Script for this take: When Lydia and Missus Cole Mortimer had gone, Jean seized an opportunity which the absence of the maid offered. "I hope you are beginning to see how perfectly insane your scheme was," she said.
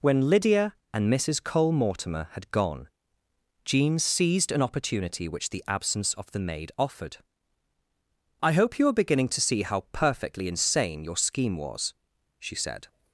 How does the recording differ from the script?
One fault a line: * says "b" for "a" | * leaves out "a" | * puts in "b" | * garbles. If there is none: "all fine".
all fine